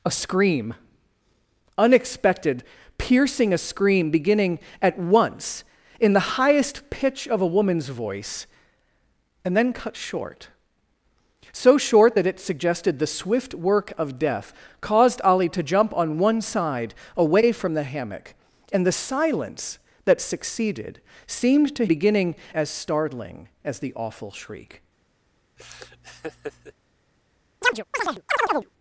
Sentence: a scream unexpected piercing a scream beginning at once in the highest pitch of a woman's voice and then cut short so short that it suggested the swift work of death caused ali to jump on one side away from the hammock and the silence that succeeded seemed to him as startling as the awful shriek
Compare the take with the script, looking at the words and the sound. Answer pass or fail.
fail